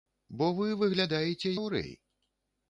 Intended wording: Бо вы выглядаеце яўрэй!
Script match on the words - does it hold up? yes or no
yes